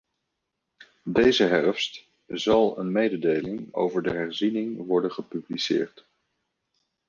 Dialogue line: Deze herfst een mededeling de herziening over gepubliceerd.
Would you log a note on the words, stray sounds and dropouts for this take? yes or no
yes